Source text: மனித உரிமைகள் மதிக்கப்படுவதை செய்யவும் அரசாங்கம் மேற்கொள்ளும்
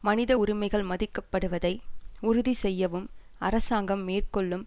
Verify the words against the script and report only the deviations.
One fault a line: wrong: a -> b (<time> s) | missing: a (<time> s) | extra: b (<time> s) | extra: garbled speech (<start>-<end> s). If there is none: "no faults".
extra: உறுதி (2.2 s)